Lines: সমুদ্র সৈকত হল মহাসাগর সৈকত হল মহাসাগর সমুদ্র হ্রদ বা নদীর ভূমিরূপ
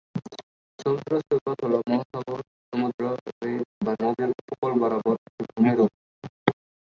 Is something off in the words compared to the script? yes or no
yes